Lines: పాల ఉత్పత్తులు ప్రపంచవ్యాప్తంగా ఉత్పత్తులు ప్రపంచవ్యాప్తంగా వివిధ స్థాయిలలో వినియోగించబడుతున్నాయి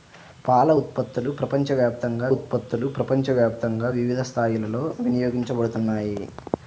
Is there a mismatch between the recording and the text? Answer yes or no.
no